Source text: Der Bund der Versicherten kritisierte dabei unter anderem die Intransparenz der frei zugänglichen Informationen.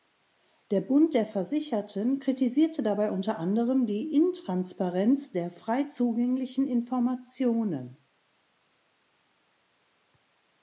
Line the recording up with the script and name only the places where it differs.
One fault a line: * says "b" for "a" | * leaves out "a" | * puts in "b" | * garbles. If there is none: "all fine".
all fine